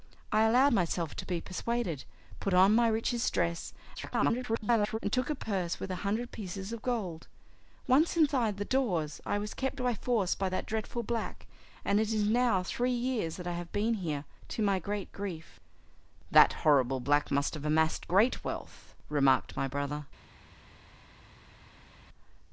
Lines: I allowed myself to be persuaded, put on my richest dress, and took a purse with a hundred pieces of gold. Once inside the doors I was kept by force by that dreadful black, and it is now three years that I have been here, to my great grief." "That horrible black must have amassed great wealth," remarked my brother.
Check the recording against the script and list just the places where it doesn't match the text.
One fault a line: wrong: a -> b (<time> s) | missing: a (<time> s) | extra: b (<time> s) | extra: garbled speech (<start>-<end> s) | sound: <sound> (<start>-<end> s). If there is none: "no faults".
extra: garbled speech (3.9-5.0 s)